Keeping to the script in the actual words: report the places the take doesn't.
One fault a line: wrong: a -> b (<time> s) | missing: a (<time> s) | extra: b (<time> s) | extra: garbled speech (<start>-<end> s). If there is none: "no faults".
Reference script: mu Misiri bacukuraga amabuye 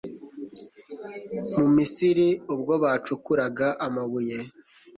extra: ubwo (2.5 s)